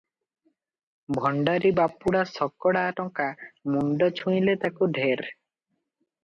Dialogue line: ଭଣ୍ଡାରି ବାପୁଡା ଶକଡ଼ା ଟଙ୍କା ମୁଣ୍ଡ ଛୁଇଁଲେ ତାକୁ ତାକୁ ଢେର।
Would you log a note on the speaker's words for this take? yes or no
yes